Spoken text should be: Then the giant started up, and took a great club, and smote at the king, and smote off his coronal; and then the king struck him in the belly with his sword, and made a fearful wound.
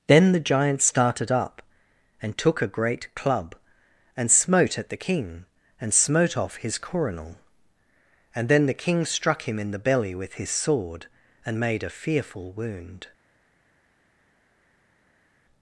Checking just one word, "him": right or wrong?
right